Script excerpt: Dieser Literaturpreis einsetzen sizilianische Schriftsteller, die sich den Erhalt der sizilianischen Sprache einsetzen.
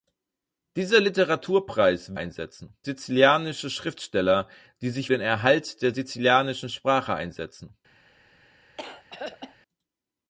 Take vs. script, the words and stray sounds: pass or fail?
fail